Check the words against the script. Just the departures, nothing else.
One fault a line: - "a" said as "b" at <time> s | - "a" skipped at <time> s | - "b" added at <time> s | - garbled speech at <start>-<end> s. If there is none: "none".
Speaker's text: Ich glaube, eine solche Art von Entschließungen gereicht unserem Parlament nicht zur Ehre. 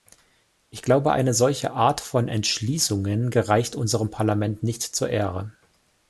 none